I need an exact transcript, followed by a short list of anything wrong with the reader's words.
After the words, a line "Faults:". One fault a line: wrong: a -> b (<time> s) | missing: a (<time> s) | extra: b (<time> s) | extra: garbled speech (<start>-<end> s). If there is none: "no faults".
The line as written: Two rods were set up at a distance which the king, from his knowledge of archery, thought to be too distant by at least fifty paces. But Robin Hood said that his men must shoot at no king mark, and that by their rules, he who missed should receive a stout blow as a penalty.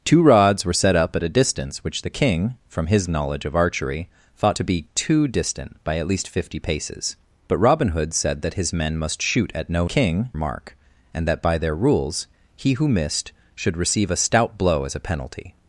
Two rods were set up at a distance which the king, from his knowledge of archery, thought to be too distant by at least fifty paces. But Robin Hood said that his men must shoot at no king mark, and that by their rules, he who missed should receive a stout blow as a penalty.
Faults:
no faults